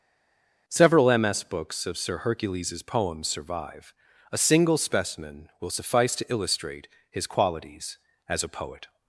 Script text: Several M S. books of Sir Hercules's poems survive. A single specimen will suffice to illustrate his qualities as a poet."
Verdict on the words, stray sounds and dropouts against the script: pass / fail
pass